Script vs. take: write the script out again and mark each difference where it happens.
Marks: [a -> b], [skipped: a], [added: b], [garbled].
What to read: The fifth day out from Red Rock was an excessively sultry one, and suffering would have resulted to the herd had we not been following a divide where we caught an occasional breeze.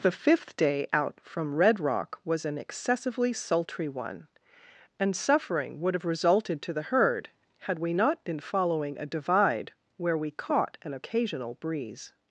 The fifth day out from Red Rock was an excessively sultry one, and suffering would have resulted to the herd had we not been following a divide where we caught an occasional breeze.